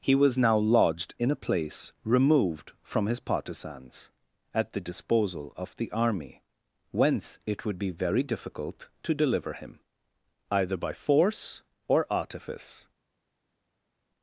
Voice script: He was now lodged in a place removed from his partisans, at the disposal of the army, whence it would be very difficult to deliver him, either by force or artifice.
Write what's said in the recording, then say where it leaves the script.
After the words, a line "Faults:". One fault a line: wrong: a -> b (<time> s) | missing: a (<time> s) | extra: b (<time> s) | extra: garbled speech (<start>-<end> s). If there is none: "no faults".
He was now lodged in a place removed from his partisans, at the disposal of the army, whence it would be very difficult to deliver him, either by force or artifice.
Faults:
no faults